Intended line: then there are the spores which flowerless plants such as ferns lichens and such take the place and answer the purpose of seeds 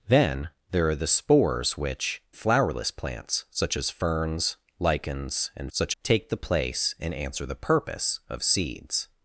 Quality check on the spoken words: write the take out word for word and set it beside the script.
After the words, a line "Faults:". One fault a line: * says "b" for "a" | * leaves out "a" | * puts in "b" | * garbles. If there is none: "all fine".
then there are the spores which flowerless plants such as ferns lichens and such take the place and answer the purpose of seeds
Faults:
all fine